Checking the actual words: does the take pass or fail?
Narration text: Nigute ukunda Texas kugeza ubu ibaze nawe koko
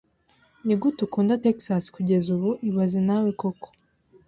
pass